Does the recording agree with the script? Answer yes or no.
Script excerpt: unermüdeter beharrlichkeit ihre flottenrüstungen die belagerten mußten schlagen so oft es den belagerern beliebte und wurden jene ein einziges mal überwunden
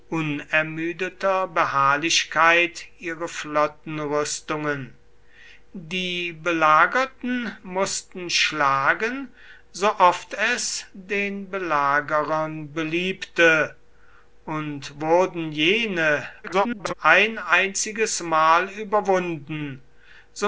no